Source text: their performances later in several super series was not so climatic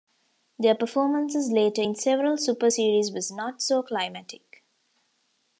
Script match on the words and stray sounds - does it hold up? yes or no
yes